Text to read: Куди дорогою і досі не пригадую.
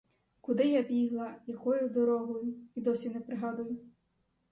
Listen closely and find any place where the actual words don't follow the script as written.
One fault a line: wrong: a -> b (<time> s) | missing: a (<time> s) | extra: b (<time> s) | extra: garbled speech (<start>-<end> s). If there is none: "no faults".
extra: я бігла якою (0.7 s)